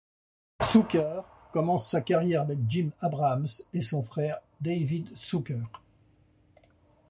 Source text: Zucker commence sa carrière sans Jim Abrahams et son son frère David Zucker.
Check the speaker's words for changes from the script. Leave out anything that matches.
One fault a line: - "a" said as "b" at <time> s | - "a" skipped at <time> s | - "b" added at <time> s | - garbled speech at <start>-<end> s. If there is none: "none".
- "sans" said as "avec" at 2.4 s
- "son" skipped at 4.0 s